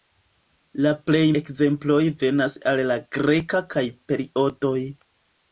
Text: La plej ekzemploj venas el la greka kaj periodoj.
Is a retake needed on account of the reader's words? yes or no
no